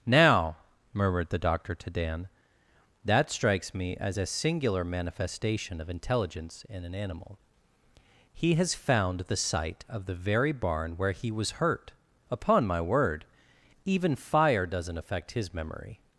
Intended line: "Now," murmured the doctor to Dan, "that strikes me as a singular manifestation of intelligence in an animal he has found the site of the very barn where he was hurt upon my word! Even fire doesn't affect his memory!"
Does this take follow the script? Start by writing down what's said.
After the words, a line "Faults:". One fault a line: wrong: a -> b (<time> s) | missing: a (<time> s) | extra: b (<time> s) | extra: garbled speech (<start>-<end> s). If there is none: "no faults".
"Now," murmured the doctor to Dan, "that strikes me as a singular manifestation of intelligence in an animal he has found the site of the very barn where he was hurt upon my word! Even fire doesn't affect his memory!"
Faults:
no faults